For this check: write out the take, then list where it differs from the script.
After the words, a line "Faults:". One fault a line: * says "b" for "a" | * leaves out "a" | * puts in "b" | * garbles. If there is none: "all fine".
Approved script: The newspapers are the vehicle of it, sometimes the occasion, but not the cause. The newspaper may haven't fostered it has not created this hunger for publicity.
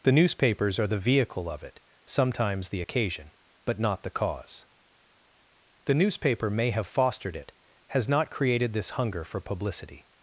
The newspapers are the vehicle of it, sometimes the occasion, but not the cause. The newspaper may have fostered it has not created this hunger for publicity.
Faults:
* says "have" for "haven't"